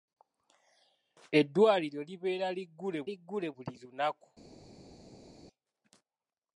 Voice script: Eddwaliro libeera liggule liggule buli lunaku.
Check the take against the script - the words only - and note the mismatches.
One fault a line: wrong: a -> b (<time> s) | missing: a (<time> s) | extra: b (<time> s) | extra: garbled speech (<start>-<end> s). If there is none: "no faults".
no faults